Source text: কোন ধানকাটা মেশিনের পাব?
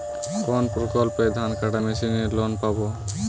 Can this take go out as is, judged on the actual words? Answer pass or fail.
fail